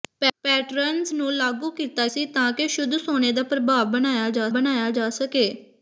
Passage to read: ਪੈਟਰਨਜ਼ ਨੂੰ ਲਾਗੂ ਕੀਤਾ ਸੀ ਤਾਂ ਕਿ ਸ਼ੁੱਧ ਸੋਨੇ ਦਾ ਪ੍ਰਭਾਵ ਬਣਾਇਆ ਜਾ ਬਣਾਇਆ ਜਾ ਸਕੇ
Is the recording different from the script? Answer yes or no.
no